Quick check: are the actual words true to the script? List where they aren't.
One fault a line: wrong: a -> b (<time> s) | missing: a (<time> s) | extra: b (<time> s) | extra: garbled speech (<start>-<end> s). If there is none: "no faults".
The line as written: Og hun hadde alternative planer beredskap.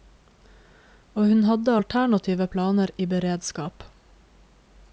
extra: i (3.0 s)